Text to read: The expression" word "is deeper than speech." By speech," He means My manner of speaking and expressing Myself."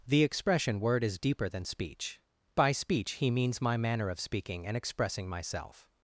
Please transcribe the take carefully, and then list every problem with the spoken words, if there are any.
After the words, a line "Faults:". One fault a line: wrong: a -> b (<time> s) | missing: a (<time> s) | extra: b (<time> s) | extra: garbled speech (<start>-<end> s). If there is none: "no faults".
The expression" word "is deeper than speech." By speech," He means My manner of speaking and expressing Myself."
Faults:
no faults